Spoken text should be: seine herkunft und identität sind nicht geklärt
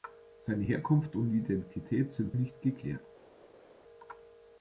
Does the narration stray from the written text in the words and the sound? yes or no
no